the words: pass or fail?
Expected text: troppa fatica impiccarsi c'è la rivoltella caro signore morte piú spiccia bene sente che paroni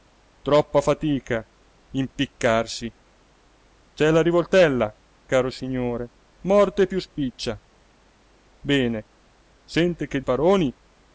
pass